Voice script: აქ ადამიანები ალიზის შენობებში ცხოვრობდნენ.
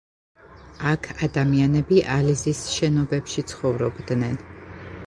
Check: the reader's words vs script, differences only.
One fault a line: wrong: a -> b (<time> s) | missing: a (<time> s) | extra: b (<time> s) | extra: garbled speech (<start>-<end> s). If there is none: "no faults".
no faults